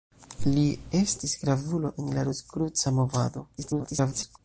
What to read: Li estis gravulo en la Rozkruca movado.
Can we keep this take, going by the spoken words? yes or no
no